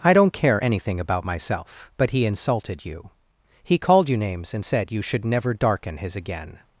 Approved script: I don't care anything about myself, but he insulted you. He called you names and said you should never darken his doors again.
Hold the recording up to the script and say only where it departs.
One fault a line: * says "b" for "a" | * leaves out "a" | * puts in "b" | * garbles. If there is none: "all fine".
* leaves out "doors"